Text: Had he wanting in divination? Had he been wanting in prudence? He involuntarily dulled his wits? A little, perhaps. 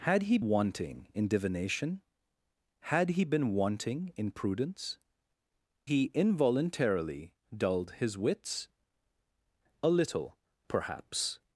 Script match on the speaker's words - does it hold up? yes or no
yes